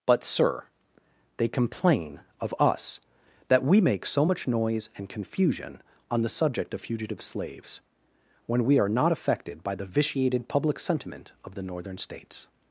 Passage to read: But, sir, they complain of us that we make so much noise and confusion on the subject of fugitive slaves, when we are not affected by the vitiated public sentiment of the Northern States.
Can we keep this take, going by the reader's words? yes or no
yes